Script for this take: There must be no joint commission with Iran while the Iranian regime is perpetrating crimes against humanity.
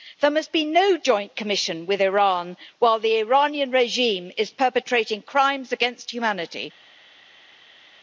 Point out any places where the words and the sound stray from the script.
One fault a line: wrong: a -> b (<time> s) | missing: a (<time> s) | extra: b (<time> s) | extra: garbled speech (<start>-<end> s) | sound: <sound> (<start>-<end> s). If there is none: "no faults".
no faults